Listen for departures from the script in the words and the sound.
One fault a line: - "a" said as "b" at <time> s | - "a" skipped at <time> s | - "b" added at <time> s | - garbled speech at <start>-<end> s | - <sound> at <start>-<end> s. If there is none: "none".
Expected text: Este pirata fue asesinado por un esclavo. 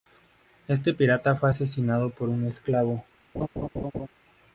- laugh at 3.3-4.1 s